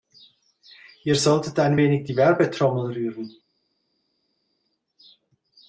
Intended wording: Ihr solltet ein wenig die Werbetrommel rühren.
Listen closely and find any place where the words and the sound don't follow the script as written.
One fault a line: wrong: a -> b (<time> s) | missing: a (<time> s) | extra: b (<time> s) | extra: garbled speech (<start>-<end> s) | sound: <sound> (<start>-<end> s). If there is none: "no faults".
no faults